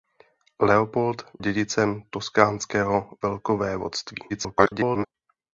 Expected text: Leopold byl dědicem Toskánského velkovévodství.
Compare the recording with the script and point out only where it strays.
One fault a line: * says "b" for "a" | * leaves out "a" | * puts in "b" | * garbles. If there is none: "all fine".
* leaves out "byl"
* garbles